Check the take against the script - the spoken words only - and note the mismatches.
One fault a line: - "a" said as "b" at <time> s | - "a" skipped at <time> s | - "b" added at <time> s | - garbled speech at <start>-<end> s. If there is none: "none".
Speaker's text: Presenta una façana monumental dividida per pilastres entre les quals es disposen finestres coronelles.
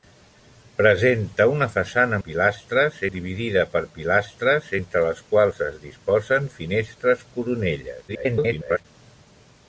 - "monumental" said as "pilastres" at 2.3 s
- garbled speech at 8.1-8.9 s